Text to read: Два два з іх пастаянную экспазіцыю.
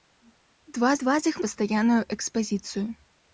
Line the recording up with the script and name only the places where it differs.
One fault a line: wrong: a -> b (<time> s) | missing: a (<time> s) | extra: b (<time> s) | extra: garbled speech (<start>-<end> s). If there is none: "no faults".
no faults